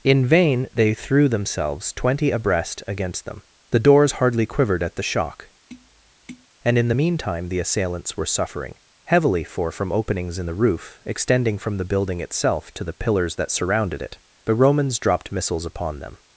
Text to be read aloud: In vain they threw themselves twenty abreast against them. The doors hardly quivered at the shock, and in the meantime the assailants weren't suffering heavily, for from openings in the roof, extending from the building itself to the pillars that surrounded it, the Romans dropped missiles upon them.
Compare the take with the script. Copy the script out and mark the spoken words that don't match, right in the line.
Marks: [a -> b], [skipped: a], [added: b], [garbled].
In vain they threw themselves twenty abreast against them. The doors hardly quivered at the shock, and in the meantime the assailants [weren't -> were] suffering heavily, for from openings in the roof, extending from the building itself to the pillars that surrounded it, the Romans dropped missiles upon them.